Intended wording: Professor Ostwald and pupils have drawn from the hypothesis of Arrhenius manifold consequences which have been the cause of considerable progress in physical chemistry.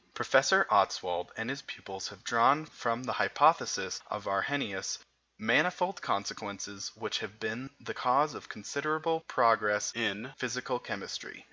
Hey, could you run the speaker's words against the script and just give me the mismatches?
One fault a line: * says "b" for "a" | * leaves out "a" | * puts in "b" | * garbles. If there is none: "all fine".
* puts in "his"